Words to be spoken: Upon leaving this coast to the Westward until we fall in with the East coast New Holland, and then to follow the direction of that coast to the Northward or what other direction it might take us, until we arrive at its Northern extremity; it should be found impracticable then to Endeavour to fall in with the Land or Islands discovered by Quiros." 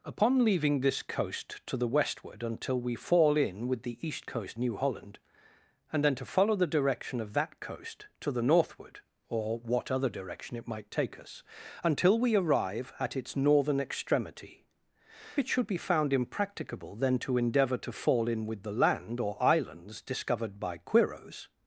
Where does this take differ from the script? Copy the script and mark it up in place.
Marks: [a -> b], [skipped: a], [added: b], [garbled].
Upon leaving this coast to the Westward until we fall in with the East coast New Holland, and then to follow the direction of that coast to the Northward or what other direction it might take us, until we arrive at its Northern extremity; it should be found impracticable then to Endeavour to fall in with the Land or Islands discovered by Quiros."